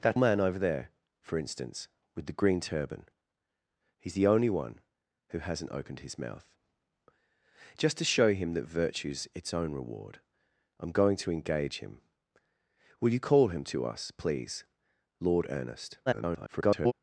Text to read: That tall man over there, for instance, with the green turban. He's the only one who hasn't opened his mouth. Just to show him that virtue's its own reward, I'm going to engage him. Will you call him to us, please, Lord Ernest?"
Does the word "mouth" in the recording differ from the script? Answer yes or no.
no